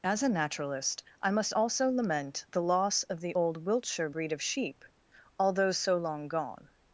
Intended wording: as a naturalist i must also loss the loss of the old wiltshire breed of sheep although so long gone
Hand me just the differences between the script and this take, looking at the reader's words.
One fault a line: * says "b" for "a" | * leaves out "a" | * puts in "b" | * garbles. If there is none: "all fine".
* says "lament" for "loss"